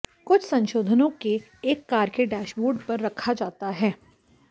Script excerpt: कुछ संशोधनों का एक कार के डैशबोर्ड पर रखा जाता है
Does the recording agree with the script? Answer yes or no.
no